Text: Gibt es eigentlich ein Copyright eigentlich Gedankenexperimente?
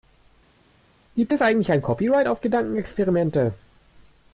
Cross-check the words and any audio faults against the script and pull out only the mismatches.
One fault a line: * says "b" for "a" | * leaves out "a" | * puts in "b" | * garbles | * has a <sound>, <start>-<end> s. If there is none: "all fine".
* says "auf" for "eigentlich"